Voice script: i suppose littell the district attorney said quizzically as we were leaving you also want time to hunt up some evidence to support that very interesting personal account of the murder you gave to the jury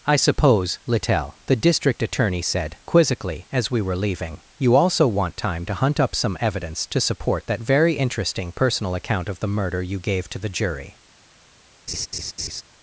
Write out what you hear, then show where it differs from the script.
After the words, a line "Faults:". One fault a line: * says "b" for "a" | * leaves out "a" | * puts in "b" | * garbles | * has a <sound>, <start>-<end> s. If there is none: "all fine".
i suppose littell the district attorney said quizzically as we were leaving you also want time to hunt up some evidence to support that very interesting personal account of the murder you gave to the jury
Faults:
* has a laugh, 11.9-12.6 s